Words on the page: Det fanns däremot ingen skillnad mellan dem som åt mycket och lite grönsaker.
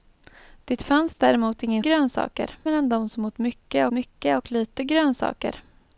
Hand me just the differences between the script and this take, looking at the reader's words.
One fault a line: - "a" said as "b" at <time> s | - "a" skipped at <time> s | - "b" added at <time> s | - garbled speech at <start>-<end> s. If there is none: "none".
- "skillnad" said as "grönsaker" at 1.8 s
- "mycket" added at 3.9 s